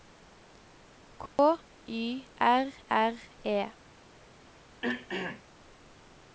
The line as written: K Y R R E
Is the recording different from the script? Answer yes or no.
no